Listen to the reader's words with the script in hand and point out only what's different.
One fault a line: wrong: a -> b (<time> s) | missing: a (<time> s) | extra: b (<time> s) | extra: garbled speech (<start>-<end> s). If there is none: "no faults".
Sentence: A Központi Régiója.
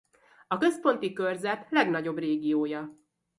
extra: Körzet legnagyobb (1.1 s)